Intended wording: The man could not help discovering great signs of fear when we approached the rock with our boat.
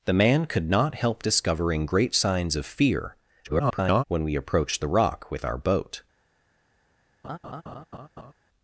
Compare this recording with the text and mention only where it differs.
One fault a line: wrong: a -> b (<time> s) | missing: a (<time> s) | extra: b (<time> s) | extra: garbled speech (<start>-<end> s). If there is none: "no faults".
extra: garbled speech (3.4-4.0 s)